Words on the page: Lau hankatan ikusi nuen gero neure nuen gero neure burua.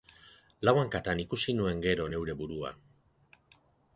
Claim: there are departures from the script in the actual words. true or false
true